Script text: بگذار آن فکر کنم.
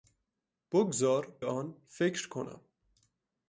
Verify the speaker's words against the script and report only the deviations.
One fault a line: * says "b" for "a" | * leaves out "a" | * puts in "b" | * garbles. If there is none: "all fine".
all fine